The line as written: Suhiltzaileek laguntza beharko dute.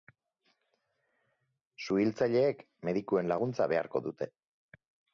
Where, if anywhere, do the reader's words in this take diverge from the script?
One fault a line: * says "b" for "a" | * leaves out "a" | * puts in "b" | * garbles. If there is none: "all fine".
* puts in "medikuen"